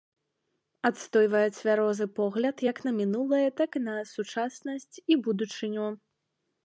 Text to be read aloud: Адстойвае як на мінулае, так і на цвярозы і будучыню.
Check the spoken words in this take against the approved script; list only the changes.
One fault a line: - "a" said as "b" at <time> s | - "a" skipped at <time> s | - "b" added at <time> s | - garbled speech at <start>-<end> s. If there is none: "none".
- "цвярозы погляд" added at 1.6 s
- "цвярозы" said as "сучаснасць" at 4.1 s